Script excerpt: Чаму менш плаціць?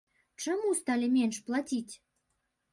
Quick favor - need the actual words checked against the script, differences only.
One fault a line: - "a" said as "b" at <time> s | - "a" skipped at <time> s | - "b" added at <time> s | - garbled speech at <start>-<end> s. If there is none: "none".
- "сталі" added at 0.8 s